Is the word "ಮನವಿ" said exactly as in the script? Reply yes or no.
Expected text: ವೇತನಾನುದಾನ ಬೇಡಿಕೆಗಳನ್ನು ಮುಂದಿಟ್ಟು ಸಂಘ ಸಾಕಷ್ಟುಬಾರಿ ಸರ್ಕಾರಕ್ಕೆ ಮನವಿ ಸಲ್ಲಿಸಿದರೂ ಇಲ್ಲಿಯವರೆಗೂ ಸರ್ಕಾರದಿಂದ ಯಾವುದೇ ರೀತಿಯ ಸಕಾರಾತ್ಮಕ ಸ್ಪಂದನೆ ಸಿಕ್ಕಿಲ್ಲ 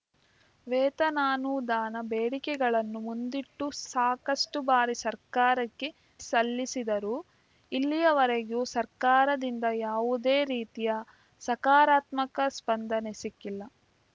no